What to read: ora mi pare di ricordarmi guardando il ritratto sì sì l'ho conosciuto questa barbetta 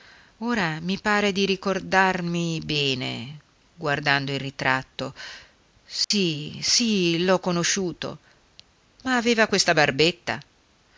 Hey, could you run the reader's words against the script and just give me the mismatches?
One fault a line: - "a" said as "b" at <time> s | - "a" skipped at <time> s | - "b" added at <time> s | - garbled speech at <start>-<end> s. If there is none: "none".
- "bene" added at 2.6 s
- "ma aveva" added at 9.0 s